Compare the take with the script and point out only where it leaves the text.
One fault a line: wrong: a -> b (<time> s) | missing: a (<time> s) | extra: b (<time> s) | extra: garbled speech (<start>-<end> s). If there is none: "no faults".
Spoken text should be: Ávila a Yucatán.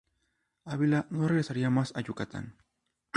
extra: no regresaría más (1.1 s)